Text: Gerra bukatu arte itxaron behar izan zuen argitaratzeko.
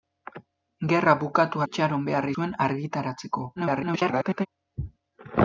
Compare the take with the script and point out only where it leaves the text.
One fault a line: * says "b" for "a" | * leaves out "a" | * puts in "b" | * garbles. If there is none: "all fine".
* leaves out "arte"
* leaves out "izan"
* garbles